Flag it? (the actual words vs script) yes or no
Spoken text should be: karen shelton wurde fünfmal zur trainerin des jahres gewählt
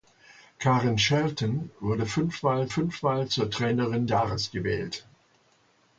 yes